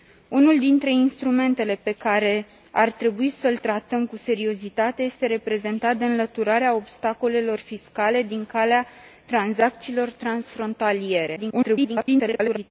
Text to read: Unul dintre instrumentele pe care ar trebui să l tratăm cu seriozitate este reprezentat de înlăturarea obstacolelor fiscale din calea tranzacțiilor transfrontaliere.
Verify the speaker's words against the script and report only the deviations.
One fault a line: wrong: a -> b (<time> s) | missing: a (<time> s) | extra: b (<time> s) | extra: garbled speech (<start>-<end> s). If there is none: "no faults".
extra: garbled speech (11.4-12.7 s)